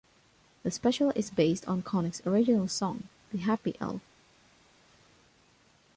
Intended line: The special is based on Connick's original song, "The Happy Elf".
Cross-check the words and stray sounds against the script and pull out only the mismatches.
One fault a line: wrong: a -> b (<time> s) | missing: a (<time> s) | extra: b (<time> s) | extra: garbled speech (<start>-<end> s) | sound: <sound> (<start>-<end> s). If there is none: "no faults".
no faults